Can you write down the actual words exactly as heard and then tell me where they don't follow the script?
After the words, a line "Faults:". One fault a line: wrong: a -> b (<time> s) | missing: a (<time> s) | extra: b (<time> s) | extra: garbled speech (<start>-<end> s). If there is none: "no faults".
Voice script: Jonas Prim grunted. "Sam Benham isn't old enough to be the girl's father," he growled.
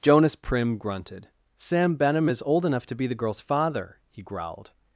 Jonas Prim grunted. "Sam Benham is old enough to be the girl's father," he growled.
Faults:
wrong: isn't -> is (2.3 s)